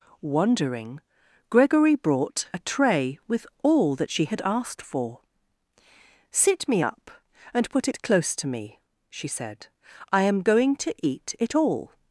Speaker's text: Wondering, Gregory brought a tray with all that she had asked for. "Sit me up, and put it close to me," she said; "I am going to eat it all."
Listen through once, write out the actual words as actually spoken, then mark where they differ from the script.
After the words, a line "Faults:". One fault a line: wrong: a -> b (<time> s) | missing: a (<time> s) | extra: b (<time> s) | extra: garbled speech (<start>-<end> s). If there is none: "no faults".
Wondering, Gregory brought a tray with all that she had asked for. "Sit me up, and put it close to me," she said; "I am going to eat it all."
Faults:
no faults